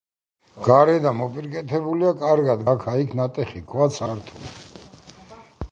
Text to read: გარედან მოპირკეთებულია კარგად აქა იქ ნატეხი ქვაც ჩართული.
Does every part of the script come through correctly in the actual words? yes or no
yes